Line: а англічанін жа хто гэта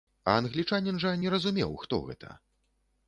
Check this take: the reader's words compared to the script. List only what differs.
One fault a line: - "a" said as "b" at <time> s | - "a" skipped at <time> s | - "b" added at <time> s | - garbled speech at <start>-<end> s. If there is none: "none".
- "не разумеў" added at 1.2 s